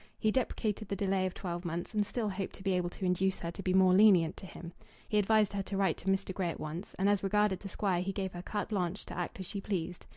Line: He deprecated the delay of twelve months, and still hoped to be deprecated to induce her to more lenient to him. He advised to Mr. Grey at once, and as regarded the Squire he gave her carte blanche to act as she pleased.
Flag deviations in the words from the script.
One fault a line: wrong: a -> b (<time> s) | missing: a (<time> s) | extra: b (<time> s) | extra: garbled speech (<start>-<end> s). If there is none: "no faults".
wrong: deprecated -> able (2.7 s)
extra: be (3.6 s)
extra: her to write (5.5 s)